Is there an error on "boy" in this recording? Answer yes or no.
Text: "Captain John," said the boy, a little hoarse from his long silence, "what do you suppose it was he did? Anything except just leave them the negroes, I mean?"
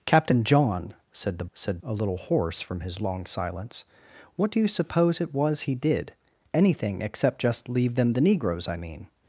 yes